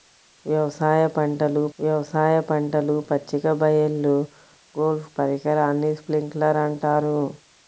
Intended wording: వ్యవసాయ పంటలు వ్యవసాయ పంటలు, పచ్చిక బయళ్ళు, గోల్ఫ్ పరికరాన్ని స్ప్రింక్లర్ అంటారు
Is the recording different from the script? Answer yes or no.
no